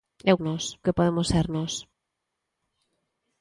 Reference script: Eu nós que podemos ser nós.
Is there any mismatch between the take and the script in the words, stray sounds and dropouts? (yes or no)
no